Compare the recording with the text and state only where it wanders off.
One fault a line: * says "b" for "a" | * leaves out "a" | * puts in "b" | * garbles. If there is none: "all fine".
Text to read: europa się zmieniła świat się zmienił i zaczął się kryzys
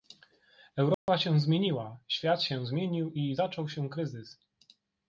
all fine